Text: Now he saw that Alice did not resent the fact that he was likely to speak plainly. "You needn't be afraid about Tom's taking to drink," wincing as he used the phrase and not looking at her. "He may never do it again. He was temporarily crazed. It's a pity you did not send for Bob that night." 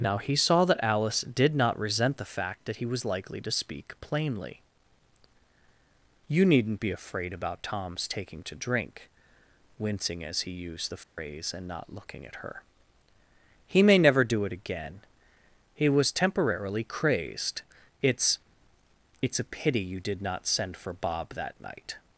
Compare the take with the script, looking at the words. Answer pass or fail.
fail